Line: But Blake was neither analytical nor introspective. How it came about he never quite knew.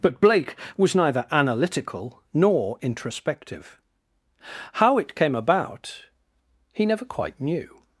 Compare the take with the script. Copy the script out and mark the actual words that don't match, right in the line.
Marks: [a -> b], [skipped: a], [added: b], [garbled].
But Blake was neither analytical nor introspective. How it came about he never quite knew.